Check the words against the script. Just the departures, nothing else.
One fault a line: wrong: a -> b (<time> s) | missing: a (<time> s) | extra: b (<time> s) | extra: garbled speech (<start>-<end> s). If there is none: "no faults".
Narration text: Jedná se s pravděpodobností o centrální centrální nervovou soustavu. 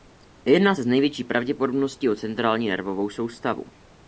extra: největší (0.9 s)
missing: centrální (2.7 s)